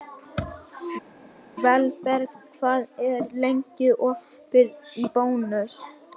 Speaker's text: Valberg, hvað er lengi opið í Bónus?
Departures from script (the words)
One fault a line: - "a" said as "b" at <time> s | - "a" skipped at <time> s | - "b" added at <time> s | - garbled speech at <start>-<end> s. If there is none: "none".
none